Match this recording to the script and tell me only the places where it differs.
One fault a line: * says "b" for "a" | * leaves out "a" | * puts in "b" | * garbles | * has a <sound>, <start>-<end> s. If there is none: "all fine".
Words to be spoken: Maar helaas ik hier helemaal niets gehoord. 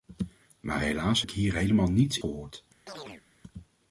* has a chirp, 2.9-3.2 s